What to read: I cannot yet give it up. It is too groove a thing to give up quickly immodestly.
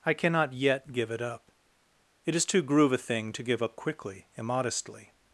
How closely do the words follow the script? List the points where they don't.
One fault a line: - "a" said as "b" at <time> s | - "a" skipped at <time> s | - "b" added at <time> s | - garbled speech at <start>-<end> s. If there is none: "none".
none